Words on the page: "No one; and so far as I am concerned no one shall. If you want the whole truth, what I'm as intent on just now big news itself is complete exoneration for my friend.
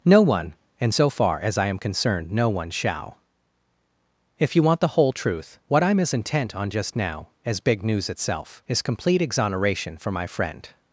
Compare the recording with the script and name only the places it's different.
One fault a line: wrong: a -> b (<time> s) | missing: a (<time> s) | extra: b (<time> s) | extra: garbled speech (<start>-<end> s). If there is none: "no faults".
extra: as (7.4 s)